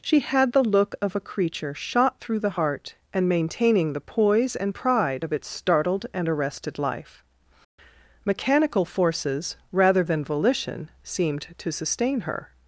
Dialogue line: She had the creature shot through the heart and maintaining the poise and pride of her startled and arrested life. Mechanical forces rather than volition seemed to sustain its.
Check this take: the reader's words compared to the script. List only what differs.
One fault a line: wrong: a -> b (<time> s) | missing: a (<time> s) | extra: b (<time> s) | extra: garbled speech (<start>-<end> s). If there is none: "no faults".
extra: look of a (0.6 s)
wrong: her -> its (5.3 s)
wrong: its -> her (12.2 s)